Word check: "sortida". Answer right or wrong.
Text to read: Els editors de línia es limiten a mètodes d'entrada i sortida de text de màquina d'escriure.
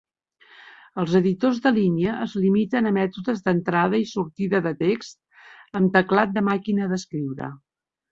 right